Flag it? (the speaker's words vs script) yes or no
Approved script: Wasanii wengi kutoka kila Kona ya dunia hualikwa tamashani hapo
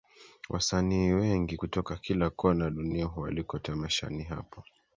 no